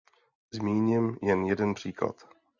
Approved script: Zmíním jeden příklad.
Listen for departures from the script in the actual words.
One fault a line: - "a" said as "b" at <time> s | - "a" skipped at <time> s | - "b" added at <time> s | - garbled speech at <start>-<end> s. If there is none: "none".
- "jen" added at 1.2 s